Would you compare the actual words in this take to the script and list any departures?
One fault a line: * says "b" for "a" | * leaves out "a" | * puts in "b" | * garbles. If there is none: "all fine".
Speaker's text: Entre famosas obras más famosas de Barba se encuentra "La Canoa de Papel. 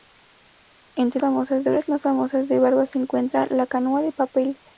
all fine